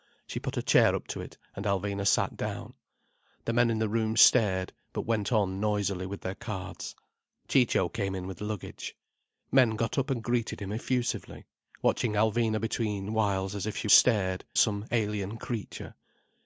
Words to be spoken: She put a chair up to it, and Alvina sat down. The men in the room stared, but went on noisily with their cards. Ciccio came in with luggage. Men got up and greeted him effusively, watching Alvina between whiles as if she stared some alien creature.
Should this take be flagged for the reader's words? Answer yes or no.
no